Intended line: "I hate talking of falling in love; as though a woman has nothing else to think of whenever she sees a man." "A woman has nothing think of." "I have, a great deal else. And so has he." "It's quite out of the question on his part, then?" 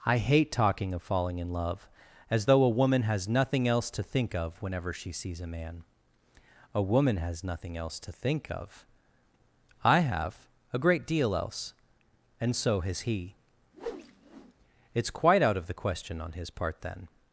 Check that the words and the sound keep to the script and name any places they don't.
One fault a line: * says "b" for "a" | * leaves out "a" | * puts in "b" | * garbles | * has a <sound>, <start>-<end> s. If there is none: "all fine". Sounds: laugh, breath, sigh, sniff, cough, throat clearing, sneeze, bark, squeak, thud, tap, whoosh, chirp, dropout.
* puts in "else to"
* has a whoosh, 13.7-14.5 s